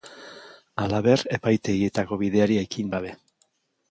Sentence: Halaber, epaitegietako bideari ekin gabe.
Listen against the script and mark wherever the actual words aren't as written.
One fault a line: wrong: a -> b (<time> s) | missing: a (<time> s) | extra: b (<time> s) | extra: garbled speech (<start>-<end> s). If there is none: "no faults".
no faults